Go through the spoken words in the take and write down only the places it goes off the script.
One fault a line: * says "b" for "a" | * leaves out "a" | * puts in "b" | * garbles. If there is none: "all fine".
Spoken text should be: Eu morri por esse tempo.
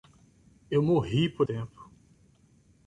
* leaves out "esse"